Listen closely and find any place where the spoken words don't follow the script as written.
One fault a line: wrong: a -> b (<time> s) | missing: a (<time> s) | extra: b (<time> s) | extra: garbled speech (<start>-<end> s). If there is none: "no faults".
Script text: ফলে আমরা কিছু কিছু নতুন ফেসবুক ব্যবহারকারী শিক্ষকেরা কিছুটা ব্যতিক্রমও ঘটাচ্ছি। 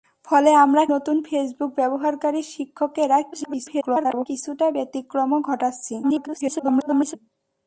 missing: কিছু কিছু (0.8 s)
extra: garbled speech (3.3-4.3 s)
extra: garbled speech (6.0-7.2 s)